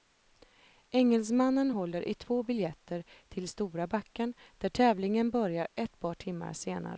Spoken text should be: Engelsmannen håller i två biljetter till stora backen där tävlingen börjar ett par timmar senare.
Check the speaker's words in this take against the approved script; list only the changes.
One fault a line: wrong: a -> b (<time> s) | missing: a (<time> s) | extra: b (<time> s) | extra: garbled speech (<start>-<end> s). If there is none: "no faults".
no faults